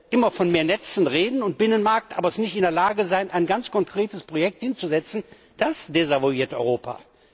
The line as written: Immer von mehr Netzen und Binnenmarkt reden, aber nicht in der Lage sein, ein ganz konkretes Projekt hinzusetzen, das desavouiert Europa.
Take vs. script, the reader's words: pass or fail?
pass